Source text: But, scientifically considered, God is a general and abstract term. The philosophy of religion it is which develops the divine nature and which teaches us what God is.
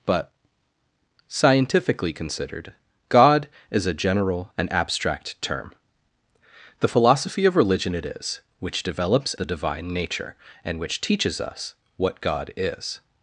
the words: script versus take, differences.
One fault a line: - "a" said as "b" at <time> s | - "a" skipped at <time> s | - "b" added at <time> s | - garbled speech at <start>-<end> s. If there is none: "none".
none